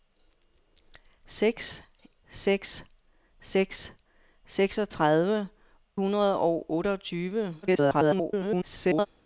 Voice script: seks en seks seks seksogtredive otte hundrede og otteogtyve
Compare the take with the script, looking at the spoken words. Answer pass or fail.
fail